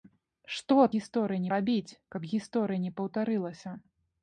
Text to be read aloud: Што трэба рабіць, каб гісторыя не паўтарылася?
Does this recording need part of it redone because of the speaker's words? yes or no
yes